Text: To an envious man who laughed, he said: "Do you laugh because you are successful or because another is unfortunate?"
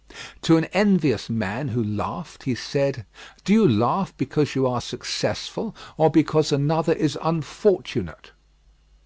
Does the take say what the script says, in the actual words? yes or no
yes